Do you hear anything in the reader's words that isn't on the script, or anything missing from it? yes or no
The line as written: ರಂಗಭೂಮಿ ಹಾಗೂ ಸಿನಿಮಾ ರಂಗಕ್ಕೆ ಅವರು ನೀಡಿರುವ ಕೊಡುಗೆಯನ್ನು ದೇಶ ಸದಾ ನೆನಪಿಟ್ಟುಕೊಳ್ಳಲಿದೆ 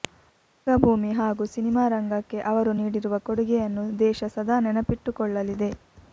no